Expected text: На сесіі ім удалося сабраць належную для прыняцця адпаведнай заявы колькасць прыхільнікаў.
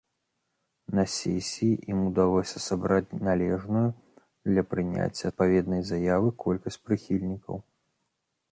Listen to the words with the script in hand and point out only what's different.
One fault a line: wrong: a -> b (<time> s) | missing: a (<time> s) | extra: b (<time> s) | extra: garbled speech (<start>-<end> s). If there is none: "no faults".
no faults